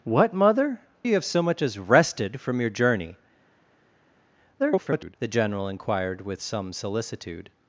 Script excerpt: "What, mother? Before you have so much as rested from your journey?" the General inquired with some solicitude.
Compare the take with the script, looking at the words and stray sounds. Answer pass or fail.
fail